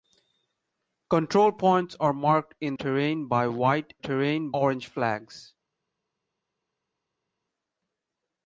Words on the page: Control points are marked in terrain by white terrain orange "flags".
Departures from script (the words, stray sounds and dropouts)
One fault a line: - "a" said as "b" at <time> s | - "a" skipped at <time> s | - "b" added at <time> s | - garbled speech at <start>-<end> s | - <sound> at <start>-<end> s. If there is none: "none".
none